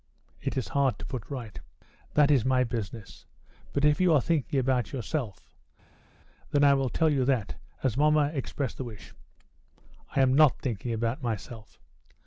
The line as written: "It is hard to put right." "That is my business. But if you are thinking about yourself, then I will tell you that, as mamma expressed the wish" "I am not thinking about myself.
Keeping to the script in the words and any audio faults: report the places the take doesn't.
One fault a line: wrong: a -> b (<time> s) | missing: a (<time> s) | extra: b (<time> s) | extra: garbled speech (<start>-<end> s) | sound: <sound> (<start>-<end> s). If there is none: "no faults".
no faults